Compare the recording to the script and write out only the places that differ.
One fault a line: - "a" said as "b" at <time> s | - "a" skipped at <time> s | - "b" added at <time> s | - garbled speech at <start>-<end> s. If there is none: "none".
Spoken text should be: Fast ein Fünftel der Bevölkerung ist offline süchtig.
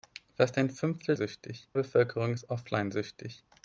- "der" said as "süchtig" at 1.1 s